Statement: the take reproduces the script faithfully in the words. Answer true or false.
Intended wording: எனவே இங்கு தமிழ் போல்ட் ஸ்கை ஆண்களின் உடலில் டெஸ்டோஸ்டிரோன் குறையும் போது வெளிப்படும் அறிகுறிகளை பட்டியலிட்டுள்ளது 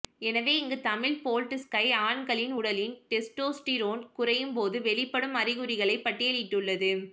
true